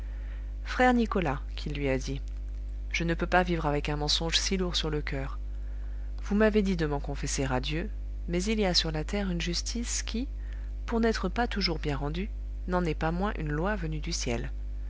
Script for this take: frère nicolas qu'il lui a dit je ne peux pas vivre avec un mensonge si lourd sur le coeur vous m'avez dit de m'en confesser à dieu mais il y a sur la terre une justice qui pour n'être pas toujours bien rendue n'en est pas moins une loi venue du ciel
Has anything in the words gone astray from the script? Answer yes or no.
no